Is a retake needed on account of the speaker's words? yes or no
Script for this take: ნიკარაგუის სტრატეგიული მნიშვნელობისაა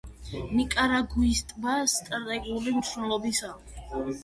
yes